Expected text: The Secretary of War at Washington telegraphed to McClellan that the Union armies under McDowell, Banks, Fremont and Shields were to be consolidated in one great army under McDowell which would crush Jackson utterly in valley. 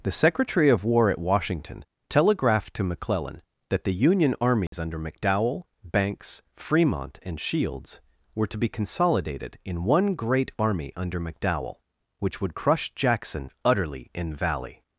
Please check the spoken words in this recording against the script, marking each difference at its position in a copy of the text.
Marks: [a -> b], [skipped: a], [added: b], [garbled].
The Secretary of War at Washington telegraphed to McClellan that the Union armies under McDowell, Banks, Fremont and Shields were to be consolidated in one great army under McDowell which would crush Jackson utterly in valley.